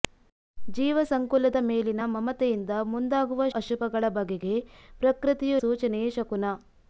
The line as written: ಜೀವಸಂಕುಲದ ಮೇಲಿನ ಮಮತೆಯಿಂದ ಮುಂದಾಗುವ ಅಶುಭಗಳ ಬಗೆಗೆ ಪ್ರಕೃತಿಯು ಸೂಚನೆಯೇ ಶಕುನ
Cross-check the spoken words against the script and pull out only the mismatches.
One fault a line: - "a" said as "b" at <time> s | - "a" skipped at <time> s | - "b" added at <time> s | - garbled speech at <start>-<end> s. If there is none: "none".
none